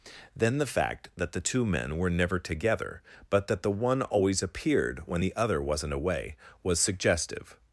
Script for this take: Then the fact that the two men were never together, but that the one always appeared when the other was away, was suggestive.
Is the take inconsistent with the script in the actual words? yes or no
yes